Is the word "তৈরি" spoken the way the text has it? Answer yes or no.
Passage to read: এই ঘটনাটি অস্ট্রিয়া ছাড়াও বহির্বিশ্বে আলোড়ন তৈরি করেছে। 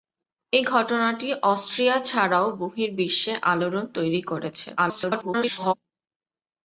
yes